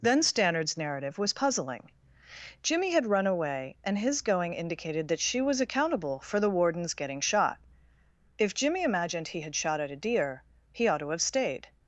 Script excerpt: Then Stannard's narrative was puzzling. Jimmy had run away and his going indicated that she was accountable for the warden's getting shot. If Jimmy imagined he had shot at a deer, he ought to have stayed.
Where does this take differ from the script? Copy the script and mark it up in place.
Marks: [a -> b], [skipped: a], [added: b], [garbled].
Then Stannard's narrative was puzzling. Jimmy had run away and his going indicated that she was accountable for the warden's getting shot. If Jimmy imagined he had shot at a deer, he ought to have stayed.